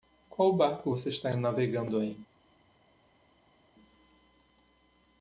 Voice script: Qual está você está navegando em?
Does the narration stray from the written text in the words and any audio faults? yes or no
yes